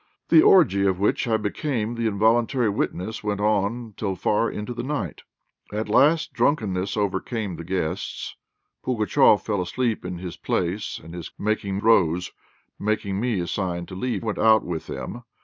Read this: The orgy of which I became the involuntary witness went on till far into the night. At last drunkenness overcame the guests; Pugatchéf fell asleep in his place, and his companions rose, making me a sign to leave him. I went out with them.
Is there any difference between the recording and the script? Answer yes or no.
yes